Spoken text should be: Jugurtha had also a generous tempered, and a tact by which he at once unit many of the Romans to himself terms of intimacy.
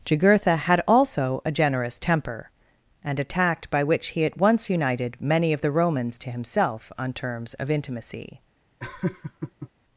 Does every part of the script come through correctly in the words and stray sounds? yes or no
no